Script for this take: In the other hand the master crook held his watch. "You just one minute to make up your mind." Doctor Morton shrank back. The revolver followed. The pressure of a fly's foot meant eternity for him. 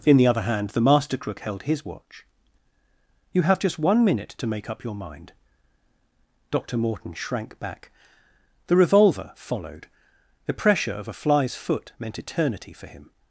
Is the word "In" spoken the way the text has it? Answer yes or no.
yes